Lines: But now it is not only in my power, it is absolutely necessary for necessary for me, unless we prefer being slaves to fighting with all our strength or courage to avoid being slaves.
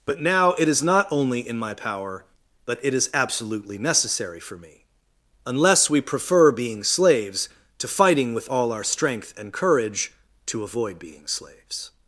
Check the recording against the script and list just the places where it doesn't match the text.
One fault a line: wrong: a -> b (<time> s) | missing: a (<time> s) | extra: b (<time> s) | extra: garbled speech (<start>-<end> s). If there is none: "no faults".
extra: but (2.6 s)
missing: necessary for (4.6 s)
wrong: or -> and (9.4 s)